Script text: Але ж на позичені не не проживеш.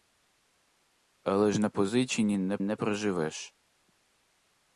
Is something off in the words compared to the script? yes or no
no